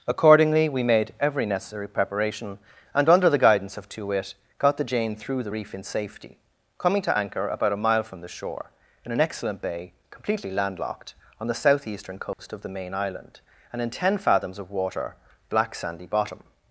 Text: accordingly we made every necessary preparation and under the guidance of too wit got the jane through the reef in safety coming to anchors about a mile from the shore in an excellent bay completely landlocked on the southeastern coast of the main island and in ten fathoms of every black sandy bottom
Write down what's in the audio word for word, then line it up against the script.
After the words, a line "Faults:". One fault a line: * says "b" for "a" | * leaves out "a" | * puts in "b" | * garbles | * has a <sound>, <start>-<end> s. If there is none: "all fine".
accordingly we made every necessary preparation and under the guidance of too wit got the jane through the reef in safety coming to anchor about a mile from the shore in an excellent bay completely landlocked on the southeastern coast of the main island and in ten fathoms of water black sandy bottom
Faults:
* says "anchor" for "anchors"
* has a dropout, 12.3-12.4 s
* says "water" for "every"